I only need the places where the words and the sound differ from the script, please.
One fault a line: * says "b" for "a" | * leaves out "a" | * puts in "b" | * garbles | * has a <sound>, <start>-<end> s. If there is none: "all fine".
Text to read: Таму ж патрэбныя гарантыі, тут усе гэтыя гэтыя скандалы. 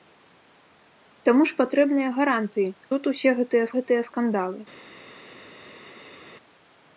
all fine